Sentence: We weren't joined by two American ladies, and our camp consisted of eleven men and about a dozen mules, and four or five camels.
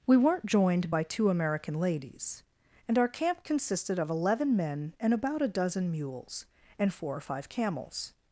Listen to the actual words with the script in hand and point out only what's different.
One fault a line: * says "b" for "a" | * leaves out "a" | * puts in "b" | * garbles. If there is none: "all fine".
all fine